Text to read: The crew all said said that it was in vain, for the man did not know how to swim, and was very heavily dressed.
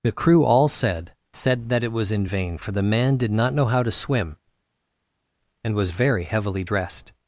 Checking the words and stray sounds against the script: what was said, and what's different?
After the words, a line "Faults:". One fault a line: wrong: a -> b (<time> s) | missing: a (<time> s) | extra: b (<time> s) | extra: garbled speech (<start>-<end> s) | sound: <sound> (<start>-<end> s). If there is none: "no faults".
The crew all said said that it was in vain, for the man did not know how to swim, and was very heavily dressed.
Faults:
no faults